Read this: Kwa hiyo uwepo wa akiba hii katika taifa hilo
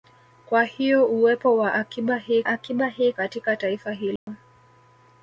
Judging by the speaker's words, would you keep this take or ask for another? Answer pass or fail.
fail